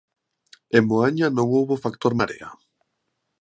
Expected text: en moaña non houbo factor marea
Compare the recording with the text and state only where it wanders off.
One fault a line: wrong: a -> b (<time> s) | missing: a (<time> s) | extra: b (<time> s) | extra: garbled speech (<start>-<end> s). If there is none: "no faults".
no faults